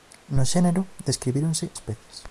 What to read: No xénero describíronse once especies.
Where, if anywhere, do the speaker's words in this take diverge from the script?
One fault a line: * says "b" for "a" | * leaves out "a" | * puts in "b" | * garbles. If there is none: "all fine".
* leaves out "once"